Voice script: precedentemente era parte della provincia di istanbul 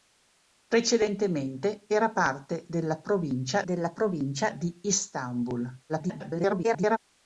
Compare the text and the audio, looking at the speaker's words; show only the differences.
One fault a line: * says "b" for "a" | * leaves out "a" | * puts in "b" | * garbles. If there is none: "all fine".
* puts in "della provincia"
* garbles